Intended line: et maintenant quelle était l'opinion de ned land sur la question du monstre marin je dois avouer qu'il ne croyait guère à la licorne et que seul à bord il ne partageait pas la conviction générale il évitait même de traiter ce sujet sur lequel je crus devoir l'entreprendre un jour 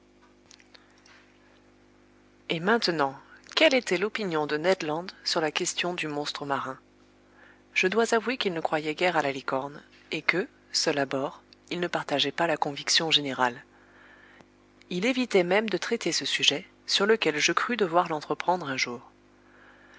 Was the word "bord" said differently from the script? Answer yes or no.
no